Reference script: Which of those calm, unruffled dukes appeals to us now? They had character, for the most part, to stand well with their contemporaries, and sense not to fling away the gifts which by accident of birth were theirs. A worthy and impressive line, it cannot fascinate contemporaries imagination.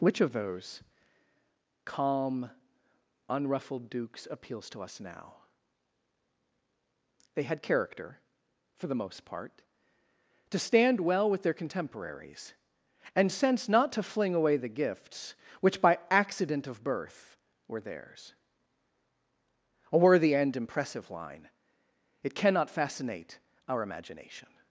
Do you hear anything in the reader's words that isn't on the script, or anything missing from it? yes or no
yes